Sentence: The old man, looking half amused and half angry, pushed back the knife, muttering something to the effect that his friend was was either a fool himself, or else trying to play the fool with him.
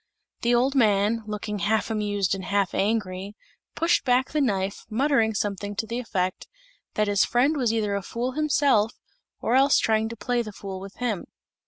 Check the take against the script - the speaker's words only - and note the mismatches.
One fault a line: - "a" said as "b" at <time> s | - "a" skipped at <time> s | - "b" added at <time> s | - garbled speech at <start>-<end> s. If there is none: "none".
- "was" skipped at 7.7 s